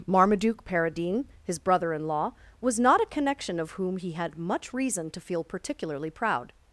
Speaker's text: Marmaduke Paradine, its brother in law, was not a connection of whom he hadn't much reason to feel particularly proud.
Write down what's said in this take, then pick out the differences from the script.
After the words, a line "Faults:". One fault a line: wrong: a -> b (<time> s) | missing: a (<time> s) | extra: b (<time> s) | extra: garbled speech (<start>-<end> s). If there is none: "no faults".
Marmaduke Paradine, his brother in law, was not a connection of whom he had much reason to feel particularly proud.
Faults:
wrong: its -> his (1.4 s)
wrong: hadn't -> had (4.1 s)